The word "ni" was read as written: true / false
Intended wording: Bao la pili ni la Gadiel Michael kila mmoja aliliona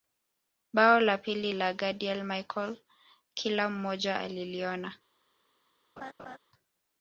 false